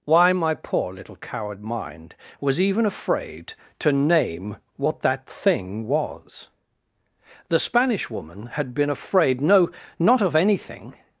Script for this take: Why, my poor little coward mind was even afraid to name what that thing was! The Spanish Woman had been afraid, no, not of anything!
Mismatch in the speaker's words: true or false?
false